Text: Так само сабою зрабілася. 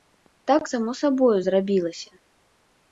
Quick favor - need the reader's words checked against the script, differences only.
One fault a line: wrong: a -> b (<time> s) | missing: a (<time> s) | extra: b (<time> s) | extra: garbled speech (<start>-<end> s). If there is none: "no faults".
no faults